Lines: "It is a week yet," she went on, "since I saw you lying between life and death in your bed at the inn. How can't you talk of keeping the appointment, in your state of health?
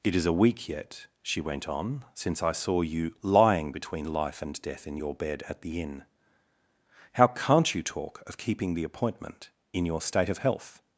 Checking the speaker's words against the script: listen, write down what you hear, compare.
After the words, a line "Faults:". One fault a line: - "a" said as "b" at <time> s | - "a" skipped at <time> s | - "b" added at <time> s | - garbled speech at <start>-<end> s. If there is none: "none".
"It is a week yet," she went on, "since I saw you lying between life and death in your bed at the inn. How can't you talk of keeping the appointment, in your state of health?
Faults:
none